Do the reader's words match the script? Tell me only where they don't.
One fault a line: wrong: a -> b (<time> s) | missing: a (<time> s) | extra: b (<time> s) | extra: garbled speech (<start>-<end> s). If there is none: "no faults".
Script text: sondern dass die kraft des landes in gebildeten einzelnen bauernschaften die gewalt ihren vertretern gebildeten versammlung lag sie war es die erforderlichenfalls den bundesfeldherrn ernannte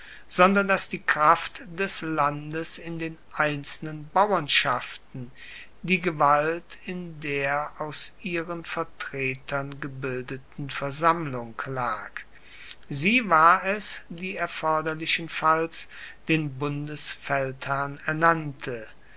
wrong: gebildeten -> den (3.0 s)
extra: in der aus (6.8 s)